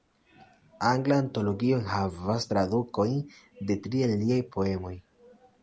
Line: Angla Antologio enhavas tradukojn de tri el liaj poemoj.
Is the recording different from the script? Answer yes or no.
no